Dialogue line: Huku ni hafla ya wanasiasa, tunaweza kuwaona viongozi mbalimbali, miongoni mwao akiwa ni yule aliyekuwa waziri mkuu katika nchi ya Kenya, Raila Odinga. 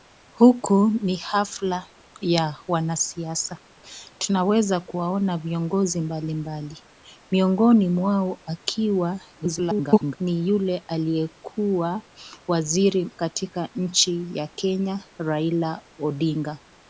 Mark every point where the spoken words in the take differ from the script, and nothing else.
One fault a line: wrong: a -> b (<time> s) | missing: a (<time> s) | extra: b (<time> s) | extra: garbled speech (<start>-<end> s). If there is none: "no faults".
extra: garbled speech (9.4-10.2 s)
missing: mkuu (13.1 s)